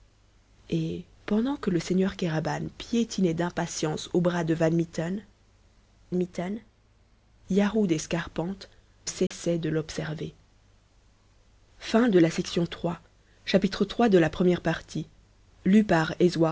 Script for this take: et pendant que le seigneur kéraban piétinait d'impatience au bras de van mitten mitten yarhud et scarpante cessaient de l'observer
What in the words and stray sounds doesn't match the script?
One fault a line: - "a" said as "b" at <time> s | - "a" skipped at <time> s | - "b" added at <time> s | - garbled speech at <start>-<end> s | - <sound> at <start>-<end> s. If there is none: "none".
- dropout at 9.3-9.3 s